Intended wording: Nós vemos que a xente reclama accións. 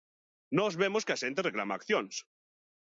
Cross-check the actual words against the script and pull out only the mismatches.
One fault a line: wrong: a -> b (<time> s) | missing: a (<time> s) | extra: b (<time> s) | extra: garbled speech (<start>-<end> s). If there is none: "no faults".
no faults